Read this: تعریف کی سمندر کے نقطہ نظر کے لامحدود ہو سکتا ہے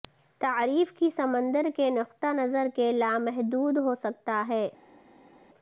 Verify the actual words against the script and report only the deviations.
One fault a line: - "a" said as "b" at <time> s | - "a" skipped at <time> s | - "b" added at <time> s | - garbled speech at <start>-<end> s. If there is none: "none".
none